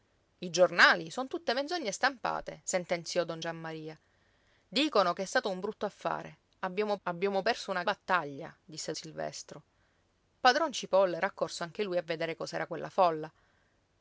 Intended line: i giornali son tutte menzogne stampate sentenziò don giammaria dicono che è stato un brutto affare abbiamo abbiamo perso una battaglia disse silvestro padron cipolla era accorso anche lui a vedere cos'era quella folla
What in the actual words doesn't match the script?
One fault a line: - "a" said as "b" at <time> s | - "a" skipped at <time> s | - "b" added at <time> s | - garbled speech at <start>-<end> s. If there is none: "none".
none